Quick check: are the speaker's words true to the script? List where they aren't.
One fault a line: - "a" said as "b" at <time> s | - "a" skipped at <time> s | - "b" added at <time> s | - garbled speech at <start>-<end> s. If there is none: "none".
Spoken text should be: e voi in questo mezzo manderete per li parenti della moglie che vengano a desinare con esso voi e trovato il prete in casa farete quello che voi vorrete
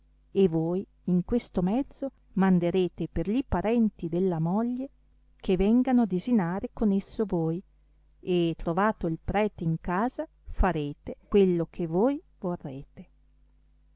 none